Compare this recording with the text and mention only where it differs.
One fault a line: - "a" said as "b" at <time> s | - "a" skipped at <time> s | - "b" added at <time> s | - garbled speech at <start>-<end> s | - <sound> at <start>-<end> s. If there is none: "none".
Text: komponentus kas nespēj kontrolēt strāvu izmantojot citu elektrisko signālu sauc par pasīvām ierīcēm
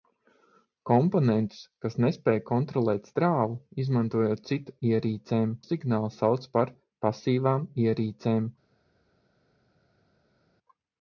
- "elektrisko" said as "ierīcēm" at 4.9 s